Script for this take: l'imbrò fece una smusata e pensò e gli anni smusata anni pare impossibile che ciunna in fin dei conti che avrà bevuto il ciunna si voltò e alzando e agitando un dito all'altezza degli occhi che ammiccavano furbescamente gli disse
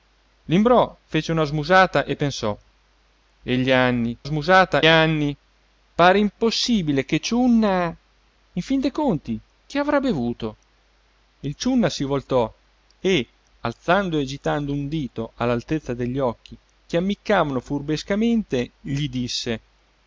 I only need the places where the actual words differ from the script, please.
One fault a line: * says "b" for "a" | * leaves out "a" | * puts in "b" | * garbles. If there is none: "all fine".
all fine